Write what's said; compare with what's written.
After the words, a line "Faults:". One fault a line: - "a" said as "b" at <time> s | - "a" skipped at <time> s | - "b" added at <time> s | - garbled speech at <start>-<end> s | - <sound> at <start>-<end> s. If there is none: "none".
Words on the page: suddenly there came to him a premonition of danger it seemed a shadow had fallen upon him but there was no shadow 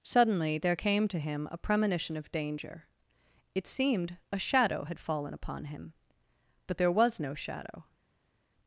suddenly there came to him a premonition of danger it seemed a shadow had fallen upon him but there was no shadow
Faults:
none